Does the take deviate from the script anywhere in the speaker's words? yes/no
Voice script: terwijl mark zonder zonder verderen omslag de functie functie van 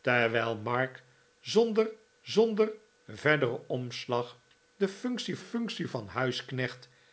no